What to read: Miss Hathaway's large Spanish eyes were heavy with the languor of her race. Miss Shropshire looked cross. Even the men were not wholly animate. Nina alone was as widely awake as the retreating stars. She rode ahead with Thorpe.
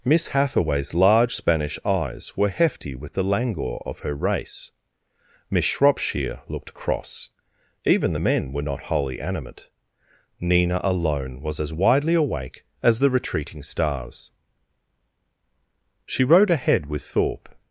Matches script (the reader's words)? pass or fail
fail